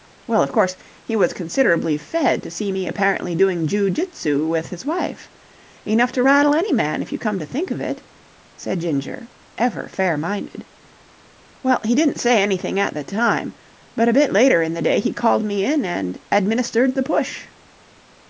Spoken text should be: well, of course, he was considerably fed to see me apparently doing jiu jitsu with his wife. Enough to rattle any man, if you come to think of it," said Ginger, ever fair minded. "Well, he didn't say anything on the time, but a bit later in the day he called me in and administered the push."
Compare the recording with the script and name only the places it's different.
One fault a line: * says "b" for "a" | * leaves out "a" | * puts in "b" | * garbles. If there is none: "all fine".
* says "at" for "on"